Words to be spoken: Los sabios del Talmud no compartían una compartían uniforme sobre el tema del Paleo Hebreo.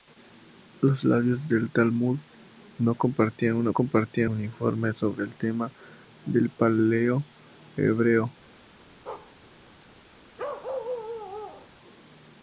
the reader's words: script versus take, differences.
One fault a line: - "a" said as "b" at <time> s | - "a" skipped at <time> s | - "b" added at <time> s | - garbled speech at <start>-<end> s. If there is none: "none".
none